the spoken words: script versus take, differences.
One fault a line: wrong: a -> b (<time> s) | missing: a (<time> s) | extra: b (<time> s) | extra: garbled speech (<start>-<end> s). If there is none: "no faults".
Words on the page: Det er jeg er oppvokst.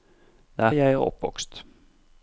no faults